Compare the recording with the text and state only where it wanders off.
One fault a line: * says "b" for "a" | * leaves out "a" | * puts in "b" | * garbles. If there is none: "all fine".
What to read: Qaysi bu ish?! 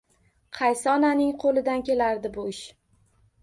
* puts in "onaning qo'lidan kelardi"